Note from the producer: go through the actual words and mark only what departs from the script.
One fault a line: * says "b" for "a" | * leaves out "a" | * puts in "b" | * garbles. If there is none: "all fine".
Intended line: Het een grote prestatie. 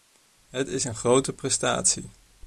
* puts in "is"